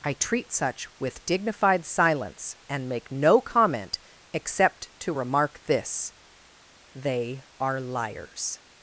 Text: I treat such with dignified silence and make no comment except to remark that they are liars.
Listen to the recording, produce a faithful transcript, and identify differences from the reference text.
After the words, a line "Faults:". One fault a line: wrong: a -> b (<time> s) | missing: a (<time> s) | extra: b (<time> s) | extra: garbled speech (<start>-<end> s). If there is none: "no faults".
I treat such with dignified silence and make no comment except to remark this they are liars.
Faults:
wrong: that -> this (5.6 s)